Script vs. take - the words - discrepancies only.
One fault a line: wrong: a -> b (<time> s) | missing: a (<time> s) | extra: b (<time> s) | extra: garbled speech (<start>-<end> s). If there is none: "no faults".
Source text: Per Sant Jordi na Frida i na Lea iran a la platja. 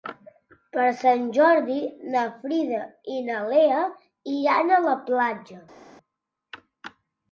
no faults